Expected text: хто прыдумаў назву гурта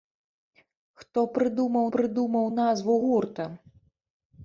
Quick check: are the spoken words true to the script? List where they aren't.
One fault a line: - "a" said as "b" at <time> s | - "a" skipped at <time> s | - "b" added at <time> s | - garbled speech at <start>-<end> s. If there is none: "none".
- "прыдумаў" added at 1.9 s